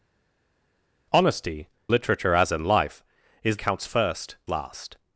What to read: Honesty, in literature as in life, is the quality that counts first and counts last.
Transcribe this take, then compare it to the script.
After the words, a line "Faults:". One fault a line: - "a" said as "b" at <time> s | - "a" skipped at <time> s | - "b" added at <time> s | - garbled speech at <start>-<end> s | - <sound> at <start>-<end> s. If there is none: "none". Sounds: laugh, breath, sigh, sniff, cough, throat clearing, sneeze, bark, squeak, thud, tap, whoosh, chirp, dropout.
Honesty, literature as in life, is counts first last.
Faults:
- "in" skipped at 1.7 s
- "the quality that" skipped at 3.6 s
- "and counts" skipped at 4.3 s